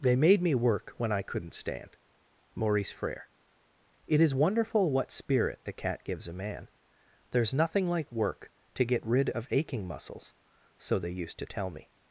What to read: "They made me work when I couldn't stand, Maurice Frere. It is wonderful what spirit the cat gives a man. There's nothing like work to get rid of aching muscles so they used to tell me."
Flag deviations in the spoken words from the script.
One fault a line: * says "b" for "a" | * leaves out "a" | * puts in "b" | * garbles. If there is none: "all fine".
all fine